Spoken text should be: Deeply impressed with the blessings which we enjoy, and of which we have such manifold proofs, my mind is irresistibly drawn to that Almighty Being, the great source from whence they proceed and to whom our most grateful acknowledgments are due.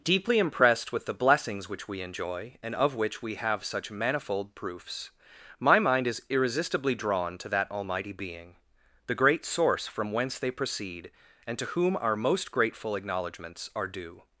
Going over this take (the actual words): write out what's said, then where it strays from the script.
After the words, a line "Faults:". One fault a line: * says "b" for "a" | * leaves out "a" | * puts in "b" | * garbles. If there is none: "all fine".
Deeply impressed with the blessings which we enjoy, and of which we have such manifold proofs, my mind is irresistibly drawn to that Almighty Being, the great source from whence they proceed and to whom our most grateful acknowledgments are due.
Faults:
all fine